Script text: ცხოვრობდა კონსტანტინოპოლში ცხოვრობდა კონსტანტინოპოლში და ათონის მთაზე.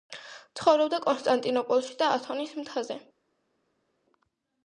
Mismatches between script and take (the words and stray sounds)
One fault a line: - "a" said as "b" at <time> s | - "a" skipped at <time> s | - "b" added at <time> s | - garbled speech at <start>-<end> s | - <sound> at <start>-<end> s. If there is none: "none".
- "ცხოვრობდა კონსტანტინოპოლში" skipped at 2.0 s